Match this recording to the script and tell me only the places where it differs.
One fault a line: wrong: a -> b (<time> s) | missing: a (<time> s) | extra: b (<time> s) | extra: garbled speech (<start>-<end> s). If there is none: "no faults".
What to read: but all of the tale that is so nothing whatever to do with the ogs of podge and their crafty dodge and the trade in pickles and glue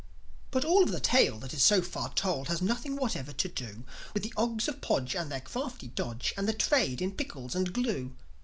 extra: far told has (1.8 s)